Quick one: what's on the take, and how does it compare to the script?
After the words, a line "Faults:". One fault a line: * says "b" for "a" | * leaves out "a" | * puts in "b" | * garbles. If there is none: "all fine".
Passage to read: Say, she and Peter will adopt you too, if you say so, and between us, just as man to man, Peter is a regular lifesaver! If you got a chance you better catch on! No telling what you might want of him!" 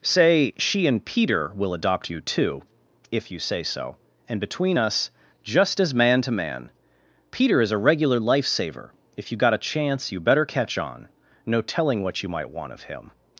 Say, she and Peter will adopt you too, if you say so, and between us, just as man to man, Peter is a regular lifesaver! If you got a chance you better catch on! No telling what you might want of him!"
Faults:
all fine